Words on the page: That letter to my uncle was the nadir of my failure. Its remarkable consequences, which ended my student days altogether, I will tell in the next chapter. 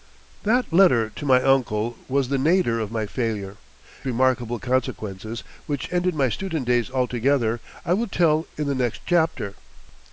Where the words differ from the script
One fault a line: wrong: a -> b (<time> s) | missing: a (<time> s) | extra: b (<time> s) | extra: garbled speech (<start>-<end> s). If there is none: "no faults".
missing: Its (3.6 s)